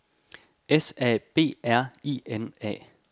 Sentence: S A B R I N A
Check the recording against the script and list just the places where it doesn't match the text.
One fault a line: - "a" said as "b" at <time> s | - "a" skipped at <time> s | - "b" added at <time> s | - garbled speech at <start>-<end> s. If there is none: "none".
none